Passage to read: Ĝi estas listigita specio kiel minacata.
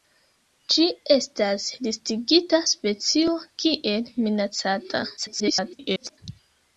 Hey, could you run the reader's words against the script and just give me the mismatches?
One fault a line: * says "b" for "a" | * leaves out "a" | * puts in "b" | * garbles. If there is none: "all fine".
* garbles